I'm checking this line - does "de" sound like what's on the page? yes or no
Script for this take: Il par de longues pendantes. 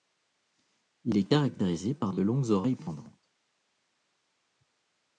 yes